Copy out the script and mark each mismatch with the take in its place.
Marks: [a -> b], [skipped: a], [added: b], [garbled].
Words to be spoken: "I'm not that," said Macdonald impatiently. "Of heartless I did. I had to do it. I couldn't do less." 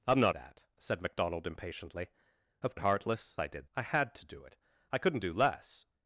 "I'm not that," said Macdonald impatiently. "Of heartless I did. I had to do it. I couldn't do less."